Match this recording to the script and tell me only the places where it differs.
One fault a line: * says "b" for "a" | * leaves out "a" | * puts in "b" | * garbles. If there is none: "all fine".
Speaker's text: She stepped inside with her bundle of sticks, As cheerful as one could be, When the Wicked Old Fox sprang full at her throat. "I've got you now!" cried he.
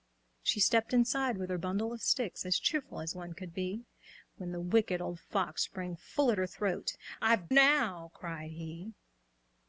* leaves out "got you"